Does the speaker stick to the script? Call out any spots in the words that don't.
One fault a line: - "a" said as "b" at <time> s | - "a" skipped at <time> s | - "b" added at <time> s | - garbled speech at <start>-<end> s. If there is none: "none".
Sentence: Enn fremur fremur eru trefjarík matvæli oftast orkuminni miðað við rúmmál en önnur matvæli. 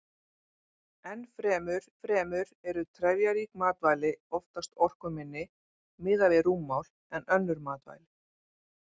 none